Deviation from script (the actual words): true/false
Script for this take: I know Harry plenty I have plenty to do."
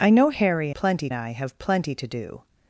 false